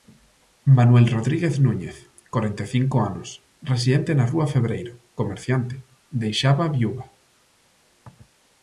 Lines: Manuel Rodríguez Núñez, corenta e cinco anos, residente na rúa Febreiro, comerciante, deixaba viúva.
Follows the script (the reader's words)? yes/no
yes